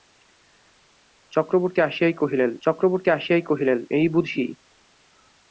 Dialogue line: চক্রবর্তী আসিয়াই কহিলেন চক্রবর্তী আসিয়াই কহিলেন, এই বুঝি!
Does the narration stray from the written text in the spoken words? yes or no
no